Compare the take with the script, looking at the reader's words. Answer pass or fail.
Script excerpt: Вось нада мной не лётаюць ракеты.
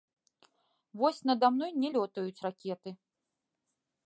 pass